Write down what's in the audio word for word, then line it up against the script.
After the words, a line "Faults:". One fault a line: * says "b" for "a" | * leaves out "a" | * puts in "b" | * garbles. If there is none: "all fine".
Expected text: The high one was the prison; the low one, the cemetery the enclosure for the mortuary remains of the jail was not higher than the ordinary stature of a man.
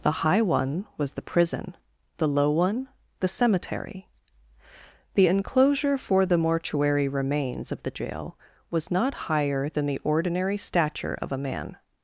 The high one was the prison; the low one, the cemetery the enclosure for the mortuary remains of the jail was not higher than the ordinary stature of a man.
Faults:
all fine